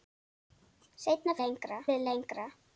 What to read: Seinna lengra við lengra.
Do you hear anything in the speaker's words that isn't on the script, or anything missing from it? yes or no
no